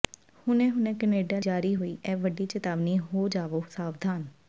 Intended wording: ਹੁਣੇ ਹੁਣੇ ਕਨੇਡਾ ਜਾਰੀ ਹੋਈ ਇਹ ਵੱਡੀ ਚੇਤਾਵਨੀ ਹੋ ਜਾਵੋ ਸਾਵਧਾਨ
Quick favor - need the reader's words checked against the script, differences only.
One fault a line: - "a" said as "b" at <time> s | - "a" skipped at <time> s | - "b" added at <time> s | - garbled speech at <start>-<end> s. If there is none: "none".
none